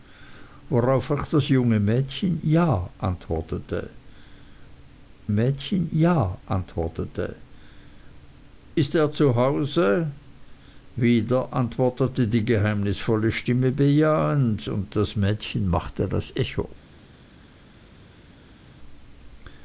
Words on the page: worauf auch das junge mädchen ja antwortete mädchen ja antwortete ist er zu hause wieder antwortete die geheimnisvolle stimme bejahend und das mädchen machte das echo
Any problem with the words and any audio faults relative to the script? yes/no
no